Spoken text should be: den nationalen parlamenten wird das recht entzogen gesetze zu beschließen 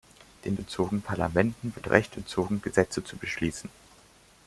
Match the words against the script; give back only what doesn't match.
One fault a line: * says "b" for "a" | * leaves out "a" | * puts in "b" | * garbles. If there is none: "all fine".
* says "entzogen" for "nationalen"
* leaves out "das"